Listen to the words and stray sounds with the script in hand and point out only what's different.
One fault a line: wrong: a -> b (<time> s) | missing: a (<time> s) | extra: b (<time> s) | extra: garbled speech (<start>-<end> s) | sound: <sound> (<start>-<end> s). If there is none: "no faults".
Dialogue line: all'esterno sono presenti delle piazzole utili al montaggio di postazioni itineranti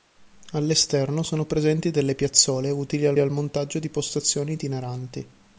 extra: al (3.2 s)